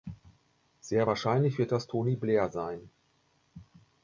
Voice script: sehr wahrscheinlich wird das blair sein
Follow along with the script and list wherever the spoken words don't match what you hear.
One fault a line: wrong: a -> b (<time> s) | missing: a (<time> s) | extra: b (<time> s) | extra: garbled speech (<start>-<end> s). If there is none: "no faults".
extra: tony (1.9 s)